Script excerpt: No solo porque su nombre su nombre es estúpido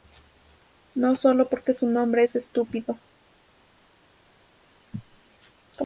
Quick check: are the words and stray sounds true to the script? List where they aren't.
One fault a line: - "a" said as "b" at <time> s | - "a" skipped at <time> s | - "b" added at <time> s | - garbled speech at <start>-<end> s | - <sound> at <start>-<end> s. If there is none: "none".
- "su nombre" skipped at 2.2 s